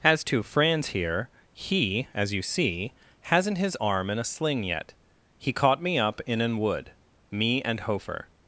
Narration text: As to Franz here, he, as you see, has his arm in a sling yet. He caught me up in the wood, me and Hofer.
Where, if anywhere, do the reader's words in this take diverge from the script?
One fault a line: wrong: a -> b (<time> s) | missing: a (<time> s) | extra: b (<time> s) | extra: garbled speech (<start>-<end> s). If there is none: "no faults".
wrong: has -> hasn't (3.2 s)
wrong: the -> an (6.4 s)